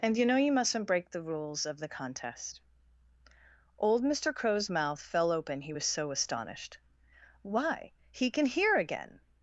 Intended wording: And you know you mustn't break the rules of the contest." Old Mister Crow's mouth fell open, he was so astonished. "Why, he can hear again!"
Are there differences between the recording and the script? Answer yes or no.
no